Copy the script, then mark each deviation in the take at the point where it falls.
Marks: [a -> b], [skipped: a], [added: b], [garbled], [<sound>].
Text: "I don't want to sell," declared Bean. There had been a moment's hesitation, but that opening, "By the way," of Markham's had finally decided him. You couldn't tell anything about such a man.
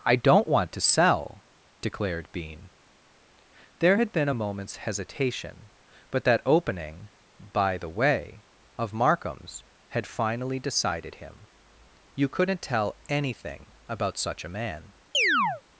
"I don't want to sell," declared Bean. There had been a moment's hesitation, but that opening, "By the way," of Markham's had finally decided him. You couldn't tell anything about such a man. [chirp]